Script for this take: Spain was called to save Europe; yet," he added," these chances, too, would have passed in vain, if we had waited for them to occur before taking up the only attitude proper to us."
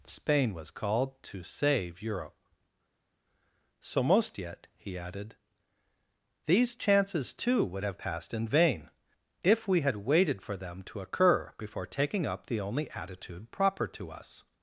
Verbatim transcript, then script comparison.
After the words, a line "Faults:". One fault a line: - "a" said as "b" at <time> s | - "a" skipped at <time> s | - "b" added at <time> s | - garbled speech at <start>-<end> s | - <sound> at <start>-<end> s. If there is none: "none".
Spain was called to save Europe; so most yet," he added," these chances, too, would have passed in vain, if we had waited for them to occur before taking up the only attitude proper to us."
Faults:
- "so most" added at 3.8 s